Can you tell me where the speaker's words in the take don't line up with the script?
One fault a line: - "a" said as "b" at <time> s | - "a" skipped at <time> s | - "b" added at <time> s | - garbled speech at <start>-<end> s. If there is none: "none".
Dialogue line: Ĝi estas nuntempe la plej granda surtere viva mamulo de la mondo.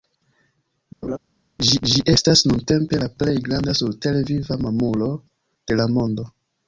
- "ĝi" added at 1.9 s